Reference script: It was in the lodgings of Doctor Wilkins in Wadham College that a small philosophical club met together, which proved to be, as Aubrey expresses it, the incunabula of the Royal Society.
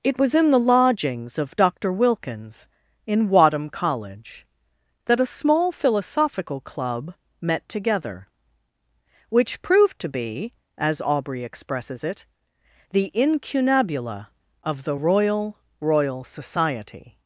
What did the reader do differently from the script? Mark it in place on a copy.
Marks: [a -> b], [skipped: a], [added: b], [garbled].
It was in the lodgings of Doctor Wilkins in Wadham College that a small philosophical club met together, which proved to be, as Aubrey expresses it, the incunabula of the Royal [added: Royal] Society.